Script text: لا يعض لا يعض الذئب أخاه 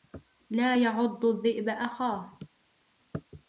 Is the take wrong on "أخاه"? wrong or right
right